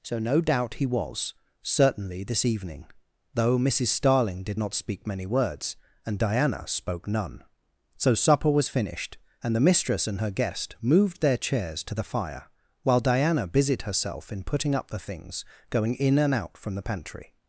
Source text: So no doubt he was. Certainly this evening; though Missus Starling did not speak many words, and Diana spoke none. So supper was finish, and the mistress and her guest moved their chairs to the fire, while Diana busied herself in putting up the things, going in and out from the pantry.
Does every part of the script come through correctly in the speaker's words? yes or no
no